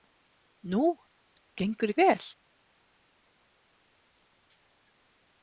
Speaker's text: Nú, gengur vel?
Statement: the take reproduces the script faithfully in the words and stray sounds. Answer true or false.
true